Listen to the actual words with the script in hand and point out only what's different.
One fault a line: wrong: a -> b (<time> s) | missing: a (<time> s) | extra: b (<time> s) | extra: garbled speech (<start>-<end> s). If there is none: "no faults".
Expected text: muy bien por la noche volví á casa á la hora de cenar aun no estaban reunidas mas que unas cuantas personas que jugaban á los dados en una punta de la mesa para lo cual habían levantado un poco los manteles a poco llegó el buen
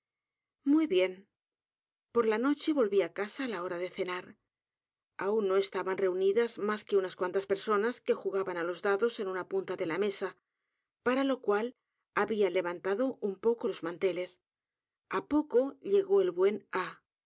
no faults